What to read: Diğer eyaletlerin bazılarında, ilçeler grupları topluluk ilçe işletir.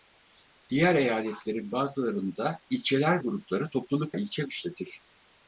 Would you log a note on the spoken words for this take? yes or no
no